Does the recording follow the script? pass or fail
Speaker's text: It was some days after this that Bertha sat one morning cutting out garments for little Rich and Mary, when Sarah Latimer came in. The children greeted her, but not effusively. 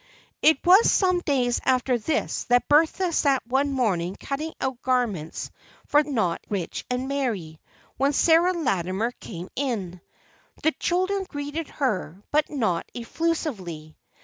fail